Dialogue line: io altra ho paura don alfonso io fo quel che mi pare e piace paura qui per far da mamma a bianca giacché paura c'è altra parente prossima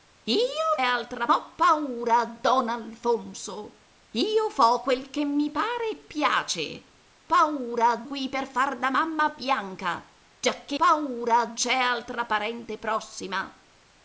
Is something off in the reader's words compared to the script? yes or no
no